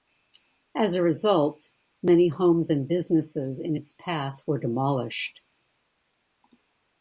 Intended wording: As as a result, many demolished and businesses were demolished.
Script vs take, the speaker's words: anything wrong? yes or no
yes